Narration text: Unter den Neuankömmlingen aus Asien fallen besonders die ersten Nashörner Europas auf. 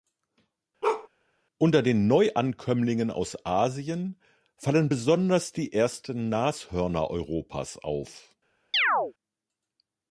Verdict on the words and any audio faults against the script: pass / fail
fail